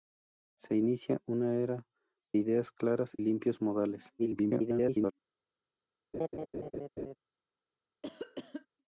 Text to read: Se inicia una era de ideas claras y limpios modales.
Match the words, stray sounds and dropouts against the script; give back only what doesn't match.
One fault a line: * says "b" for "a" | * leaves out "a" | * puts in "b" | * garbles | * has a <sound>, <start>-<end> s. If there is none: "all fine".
* leaves out "de"
* leaves out "y"
* garbles
* has a laugh, 6.1-7.2 s
* has a cough, 8.0-8.7 s